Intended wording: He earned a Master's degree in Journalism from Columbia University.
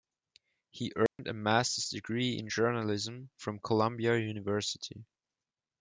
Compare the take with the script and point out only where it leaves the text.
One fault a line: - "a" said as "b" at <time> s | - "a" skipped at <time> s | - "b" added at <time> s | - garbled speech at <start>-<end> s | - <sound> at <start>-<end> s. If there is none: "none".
- dropout at 1.1-1.2 s